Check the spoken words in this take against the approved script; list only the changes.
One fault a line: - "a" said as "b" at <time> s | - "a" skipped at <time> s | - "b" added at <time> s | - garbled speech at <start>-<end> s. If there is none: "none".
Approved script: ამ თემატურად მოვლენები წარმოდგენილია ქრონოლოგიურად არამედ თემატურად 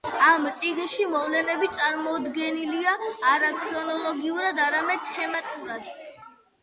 - "თემატურად" said as "წიგნში" at 0.6 s
- "არა" added at 3.4 s